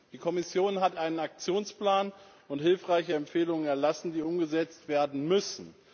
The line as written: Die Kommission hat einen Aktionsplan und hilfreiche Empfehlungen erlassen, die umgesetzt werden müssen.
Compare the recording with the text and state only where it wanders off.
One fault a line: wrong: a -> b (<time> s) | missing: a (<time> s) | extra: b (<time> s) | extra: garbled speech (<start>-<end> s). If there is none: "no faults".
no faults